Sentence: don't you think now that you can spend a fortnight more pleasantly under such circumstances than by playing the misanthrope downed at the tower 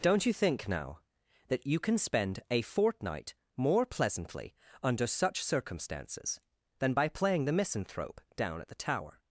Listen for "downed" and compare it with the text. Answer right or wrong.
wrong